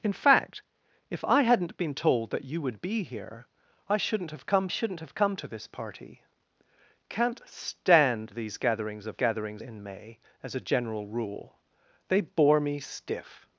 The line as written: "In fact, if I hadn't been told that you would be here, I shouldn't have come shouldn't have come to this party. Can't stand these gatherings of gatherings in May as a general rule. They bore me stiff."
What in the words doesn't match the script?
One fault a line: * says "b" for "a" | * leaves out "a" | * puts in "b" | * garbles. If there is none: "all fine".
all fine